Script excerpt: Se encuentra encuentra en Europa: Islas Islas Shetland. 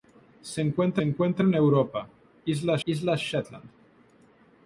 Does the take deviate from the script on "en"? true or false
false